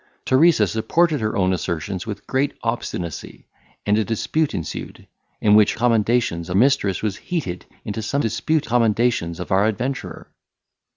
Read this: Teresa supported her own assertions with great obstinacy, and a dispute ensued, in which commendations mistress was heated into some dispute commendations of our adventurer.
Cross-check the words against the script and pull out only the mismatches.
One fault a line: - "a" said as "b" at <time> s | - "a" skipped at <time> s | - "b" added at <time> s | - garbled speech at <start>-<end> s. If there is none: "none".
none